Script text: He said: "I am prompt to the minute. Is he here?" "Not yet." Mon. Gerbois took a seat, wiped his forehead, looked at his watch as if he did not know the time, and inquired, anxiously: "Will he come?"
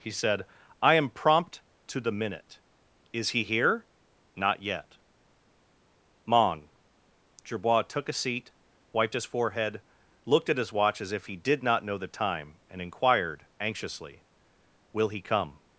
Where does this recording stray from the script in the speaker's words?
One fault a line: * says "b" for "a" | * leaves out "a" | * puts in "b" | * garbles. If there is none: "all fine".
all fine